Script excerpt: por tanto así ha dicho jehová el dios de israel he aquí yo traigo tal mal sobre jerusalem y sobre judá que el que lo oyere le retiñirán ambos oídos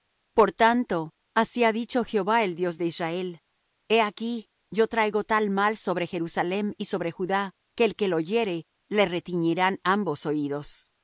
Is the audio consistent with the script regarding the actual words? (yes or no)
yes